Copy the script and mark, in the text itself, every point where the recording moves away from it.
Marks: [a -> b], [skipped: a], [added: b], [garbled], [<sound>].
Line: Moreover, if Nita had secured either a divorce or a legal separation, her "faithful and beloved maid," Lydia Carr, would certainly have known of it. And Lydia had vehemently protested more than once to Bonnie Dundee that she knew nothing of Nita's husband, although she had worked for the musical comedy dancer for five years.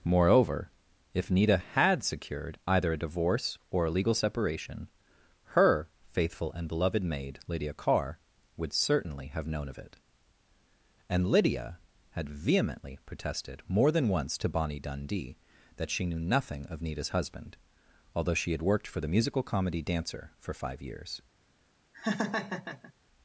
Moreover, if Nita had secured either a divorce or a legal separation, her "faithful and beloved maid," Lydia Carr, would certainly have known of it. And Lydia had vehemently protested more than once to Bonnie Dundee that she knew nothing of Nita's husband, although she had worked for the musical comedy dancer for five years. [laugh]